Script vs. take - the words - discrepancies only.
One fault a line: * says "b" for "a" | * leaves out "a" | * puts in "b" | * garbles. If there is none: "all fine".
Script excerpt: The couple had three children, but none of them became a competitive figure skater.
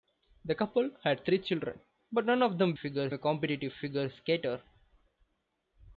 * says "figure" for "became"